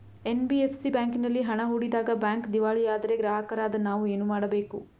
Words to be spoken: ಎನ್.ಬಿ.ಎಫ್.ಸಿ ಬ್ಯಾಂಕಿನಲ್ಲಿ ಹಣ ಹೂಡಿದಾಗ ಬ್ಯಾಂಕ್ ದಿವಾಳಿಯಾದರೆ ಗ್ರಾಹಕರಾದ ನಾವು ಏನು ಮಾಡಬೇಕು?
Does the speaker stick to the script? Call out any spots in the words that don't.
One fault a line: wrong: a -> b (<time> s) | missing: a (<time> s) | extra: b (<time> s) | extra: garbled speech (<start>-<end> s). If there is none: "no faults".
no faults